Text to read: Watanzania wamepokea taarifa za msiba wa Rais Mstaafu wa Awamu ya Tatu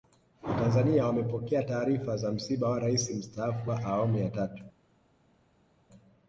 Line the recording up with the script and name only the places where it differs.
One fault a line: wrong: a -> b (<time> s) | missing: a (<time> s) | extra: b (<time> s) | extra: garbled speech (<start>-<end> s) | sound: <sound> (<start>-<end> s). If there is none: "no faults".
no faults